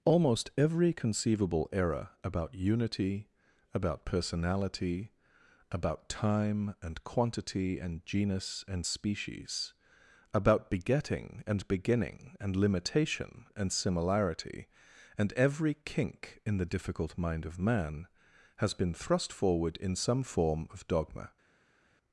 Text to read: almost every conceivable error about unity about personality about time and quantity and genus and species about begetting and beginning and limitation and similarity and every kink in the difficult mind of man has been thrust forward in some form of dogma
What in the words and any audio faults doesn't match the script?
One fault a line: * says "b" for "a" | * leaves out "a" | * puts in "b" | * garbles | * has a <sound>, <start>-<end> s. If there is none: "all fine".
all fine